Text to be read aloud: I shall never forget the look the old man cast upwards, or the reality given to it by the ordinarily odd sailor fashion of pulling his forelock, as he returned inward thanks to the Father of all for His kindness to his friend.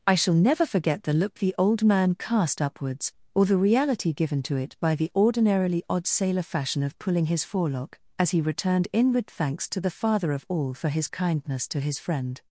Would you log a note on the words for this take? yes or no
no